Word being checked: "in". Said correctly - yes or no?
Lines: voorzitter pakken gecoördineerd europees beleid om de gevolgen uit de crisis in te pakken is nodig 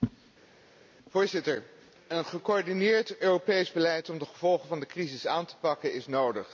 no